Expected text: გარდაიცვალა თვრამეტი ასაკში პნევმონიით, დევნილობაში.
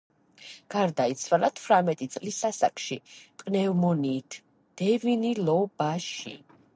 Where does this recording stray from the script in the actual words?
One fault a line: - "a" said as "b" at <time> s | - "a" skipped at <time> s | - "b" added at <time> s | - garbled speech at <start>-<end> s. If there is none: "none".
- "წლის" added at 2.1 s